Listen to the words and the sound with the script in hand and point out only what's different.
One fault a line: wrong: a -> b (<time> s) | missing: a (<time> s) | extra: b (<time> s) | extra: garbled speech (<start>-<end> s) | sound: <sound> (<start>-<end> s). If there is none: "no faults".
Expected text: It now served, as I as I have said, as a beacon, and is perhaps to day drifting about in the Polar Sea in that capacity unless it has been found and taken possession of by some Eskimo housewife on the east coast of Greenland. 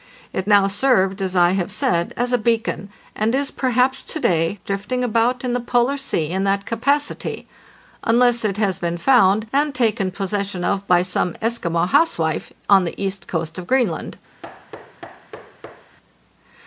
missing: as I (1.5 s)
sound: thud (14.4-16.0 s)